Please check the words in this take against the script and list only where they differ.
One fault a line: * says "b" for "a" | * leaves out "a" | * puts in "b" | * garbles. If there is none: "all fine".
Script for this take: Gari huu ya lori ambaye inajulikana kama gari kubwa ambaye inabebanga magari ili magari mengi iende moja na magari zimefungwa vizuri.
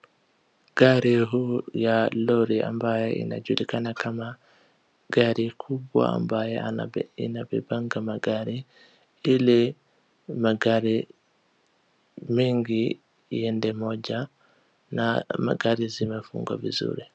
all fine